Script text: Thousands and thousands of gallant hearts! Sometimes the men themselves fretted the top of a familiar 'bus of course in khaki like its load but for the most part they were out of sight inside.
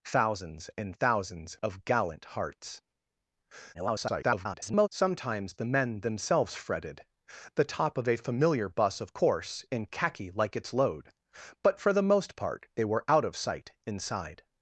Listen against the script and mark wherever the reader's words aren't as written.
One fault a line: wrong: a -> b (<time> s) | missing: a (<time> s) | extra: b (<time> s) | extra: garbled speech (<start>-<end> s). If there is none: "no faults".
extra: garbled speech (3.7-4.9 s)